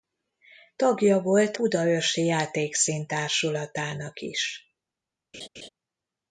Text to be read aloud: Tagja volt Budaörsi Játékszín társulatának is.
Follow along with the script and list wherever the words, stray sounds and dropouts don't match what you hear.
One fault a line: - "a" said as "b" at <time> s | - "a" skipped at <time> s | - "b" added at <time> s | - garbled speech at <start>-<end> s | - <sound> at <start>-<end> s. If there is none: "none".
- laugh at 5.3-5.7 s